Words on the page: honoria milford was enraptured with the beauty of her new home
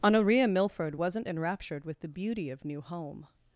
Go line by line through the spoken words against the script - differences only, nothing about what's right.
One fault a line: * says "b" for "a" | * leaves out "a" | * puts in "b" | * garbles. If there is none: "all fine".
* says "wasn't" for "was"
* leaves out "her"